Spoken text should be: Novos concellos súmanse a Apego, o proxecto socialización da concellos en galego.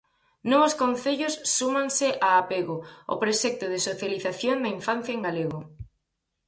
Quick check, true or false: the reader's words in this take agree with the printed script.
false